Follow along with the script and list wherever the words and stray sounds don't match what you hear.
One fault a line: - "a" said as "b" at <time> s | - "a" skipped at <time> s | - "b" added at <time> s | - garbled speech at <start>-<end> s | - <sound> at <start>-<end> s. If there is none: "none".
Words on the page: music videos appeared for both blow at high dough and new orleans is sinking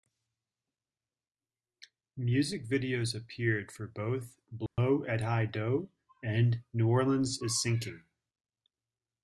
- dropout at 4.7-4.8 s